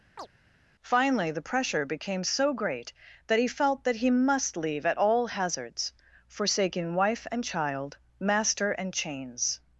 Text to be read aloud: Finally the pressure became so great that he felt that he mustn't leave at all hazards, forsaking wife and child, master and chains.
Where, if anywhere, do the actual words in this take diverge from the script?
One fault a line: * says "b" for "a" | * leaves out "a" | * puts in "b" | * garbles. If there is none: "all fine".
* says "must" for "mustn't"